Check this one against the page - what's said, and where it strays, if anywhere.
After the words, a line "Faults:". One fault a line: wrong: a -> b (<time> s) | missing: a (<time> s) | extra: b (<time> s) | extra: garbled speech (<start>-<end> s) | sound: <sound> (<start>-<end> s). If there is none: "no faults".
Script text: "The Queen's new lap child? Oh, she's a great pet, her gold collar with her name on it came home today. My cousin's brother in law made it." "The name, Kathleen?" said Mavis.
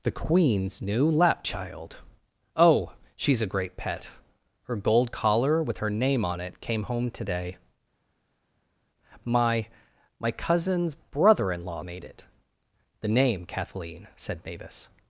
"The Queen's new lap child? Oh, she's a great pet, her gold collar with her name on it came home today. My My cousin's brother in law made it." "The name, Kathleen?" said Mavis.
Faults:
extra: My (10.2 s)